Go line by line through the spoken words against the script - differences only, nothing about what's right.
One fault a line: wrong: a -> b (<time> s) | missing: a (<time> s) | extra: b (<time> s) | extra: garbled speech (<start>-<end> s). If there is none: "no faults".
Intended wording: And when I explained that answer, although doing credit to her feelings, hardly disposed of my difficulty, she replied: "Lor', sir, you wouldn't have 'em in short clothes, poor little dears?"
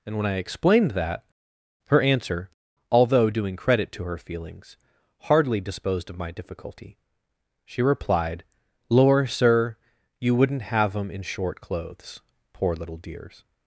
extra: her (1.9 s)